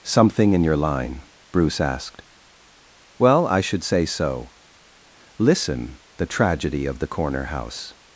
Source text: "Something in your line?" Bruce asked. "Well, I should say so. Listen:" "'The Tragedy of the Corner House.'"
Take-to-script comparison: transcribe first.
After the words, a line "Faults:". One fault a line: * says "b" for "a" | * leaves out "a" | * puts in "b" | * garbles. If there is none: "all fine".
"Something in your line?" Bruce asked. "Well, I should say so. Listen:" "'The Tragedy of the Corner House.'"
Faults:
all fine